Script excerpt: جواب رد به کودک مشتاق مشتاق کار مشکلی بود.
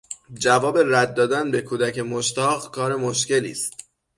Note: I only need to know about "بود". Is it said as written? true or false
false